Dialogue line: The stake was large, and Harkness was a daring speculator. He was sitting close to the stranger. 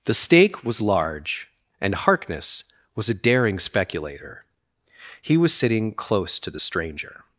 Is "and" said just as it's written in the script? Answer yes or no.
yes